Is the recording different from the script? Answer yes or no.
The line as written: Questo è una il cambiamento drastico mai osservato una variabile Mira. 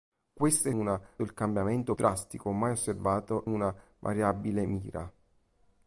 no